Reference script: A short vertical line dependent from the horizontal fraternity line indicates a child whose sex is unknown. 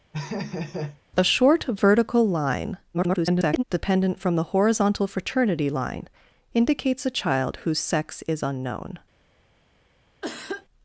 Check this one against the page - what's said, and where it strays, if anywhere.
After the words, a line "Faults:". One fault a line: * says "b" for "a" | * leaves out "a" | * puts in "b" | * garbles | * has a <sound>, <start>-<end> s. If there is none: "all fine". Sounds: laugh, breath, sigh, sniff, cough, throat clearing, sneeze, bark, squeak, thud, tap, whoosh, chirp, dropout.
A short vertical line [garbled] dependent from the horizontal fraternity line indicates a child whose sex is unknown.
Faults:
* has a laugh, 0.1-1.0 s
* garbles
* has a cough, 10.2-10.7 s